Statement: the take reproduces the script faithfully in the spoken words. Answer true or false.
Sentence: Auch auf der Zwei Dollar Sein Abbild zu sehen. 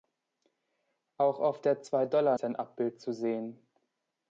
true